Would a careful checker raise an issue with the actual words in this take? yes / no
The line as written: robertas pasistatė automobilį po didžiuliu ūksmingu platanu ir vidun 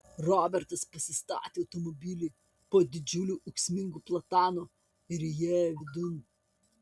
yes